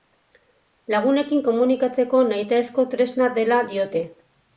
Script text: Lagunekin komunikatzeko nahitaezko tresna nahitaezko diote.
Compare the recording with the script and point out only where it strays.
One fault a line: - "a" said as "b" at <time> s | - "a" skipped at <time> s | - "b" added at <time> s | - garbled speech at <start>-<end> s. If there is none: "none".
- "nahitaezko" said as "dela" at 3.4 s